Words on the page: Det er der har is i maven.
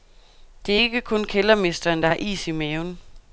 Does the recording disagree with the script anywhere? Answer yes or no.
yes